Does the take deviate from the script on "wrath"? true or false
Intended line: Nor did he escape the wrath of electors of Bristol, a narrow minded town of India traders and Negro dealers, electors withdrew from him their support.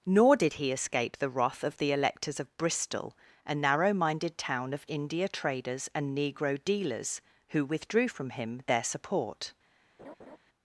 false